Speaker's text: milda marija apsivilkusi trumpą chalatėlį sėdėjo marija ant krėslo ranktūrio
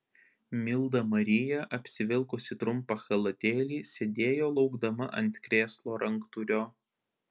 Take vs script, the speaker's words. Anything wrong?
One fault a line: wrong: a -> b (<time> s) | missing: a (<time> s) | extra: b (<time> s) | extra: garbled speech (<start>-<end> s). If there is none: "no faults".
wrong: marija -> laukdama (4.6 s)